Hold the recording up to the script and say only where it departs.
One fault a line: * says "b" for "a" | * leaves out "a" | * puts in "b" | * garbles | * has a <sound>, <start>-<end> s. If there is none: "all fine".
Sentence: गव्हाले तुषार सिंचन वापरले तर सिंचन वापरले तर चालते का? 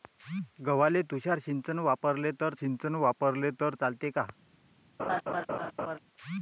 * has a laugh, 5.0-6.0 s